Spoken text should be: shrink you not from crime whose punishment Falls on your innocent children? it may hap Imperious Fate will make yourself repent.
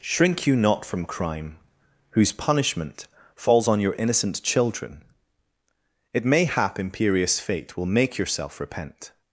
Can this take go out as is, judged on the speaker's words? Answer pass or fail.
pass